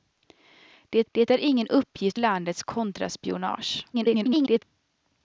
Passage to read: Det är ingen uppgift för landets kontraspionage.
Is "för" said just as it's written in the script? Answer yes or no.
no